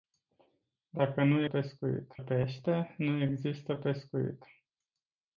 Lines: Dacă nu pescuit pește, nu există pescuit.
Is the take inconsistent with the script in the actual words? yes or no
no